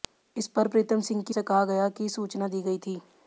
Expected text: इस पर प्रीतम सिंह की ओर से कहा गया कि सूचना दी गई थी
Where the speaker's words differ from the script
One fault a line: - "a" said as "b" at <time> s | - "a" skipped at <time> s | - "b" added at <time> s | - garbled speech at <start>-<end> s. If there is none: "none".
- "ओर" skipped at 1.4 s